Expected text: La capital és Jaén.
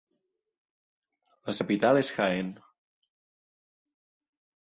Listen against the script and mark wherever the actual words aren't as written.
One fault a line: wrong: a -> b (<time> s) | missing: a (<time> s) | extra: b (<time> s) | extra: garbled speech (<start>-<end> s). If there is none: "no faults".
no faults